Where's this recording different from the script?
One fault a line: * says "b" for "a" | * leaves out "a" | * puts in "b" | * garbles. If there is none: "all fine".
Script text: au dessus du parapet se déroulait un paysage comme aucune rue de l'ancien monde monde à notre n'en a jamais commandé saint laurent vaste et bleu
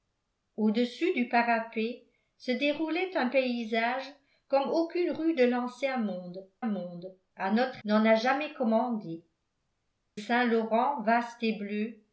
all fine